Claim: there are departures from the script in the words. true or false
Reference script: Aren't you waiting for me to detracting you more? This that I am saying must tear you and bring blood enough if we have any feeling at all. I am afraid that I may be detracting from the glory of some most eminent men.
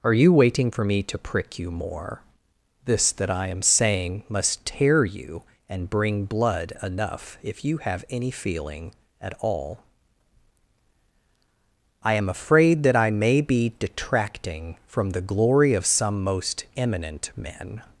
true